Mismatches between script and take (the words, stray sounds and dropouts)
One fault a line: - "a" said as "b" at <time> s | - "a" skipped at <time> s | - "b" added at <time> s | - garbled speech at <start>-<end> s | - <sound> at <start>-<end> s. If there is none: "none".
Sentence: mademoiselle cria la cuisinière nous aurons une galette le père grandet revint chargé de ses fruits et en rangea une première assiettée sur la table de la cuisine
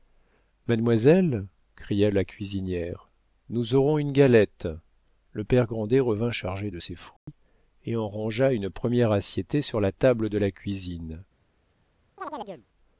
- dropout at 7.2-7.3 s
- chirp at 12.2-12.7 s